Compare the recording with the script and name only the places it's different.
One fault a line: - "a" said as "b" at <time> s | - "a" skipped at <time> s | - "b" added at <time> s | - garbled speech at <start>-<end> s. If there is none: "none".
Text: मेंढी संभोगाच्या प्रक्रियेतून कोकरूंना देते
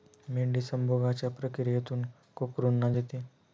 none